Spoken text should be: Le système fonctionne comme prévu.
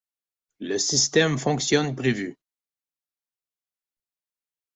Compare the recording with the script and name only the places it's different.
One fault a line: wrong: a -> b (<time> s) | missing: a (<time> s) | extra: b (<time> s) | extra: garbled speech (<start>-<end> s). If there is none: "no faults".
missing: comme (1.9 s)